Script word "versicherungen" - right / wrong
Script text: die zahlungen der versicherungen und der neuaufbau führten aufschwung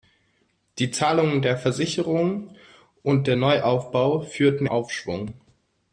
right